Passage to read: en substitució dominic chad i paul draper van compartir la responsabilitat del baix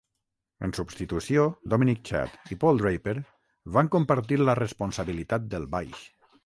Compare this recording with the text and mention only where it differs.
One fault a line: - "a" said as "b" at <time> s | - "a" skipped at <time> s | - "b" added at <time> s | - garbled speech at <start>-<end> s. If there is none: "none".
none